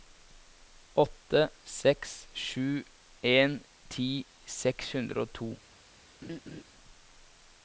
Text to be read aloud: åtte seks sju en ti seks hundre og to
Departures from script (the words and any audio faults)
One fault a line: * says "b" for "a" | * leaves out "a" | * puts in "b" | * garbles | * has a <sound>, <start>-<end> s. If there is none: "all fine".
* has a laugh, 6.2-6.6 s